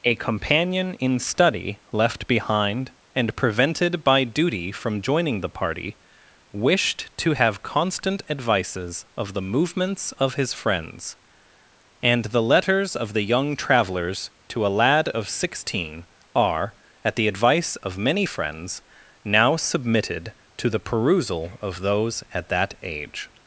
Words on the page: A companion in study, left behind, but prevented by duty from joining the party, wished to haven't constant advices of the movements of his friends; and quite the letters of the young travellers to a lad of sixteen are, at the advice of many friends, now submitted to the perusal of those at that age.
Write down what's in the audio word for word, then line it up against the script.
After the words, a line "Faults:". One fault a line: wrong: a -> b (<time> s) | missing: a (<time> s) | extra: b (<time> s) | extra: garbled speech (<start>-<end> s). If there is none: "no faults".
A companion in study, left behind, and prevented by duty from joining the party, wished to have constant advices of the movements of his friends; and the letters of the young travellers to a lad of sixteen are, at the advice of many friends, now submitted to the perusal of those at that age.
Faults:
wrong: but -> and (3.1 s)
wrong: haven't -> have (7.3 s)
missing: quite (12.2 s)